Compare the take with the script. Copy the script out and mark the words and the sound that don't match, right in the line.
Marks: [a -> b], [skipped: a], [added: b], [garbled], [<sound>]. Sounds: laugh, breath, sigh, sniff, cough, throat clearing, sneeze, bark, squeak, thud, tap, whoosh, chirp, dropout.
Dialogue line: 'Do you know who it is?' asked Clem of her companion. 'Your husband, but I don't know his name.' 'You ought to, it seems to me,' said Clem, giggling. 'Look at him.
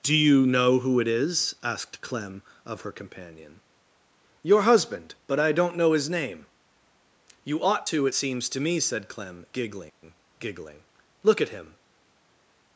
'Do you know who it is?' asked Clem of her companion. 'Your husband, but I don't know his name.' 'You ought to, it seems to me,' said Clem, giggling. [added: giggling] 'Look at him.